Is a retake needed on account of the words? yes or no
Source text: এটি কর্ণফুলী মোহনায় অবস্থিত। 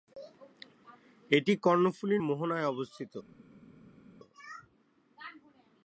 no